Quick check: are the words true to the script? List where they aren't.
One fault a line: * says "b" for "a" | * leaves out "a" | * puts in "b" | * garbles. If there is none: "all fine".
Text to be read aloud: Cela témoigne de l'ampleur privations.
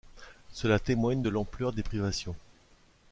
* puts in "des"